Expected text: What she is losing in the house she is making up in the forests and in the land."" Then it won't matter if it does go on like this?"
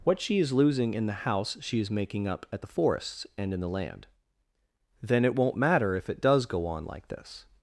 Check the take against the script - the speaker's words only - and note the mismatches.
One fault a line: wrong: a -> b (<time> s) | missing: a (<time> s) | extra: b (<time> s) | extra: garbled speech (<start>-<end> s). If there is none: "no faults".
wrong: in -> at (2.5 s)